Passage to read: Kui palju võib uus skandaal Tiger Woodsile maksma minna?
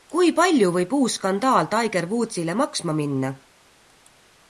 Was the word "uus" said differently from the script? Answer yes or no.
no